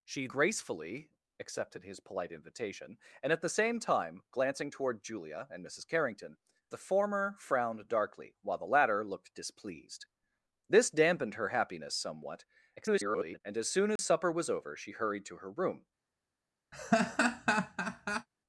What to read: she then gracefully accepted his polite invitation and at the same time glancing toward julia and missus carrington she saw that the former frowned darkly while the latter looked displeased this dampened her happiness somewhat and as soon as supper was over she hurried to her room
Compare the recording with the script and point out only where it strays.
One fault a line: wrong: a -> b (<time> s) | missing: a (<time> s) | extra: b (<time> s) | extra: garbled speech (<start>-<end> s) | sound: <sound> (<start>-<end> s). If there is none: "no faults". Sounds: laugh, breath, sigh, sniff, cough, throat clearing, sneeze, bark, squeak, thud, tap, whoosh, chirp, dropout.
missing: then (0.3 s)
missing: she saw that (6.4 s)
extra: garbled speech (12.8-13.4 s)
sound: dropout (14.0-14.0 s)
sound: laugh (16.7-18.3 s)